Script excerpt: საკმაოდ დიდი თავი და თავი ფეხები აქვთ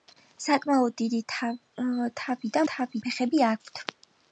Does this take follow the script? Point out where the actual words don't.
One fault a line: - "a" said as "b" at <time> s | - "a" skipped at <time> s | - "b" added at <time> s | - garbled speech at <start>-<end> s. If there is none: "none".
none